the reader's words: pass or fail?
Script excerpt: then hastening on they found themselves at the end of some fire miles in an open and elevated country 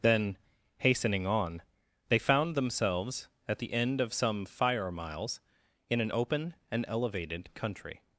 pass